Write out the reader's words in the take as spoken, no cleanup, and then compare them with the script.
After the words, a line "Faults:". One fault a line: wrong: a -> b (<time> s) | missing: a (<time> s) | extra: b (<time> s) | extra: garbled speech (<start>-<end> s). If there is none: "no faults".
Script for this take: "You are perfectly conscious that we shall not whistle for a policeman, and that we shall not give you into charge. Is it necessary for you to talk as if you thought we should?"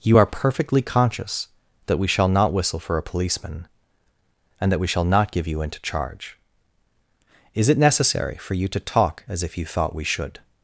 "You are perfectly conscious that we shall not whistle for a policeman, and that we shall not give you into charge. Is it necessary for you to talk as if you thought we should?"
Faults:
no faults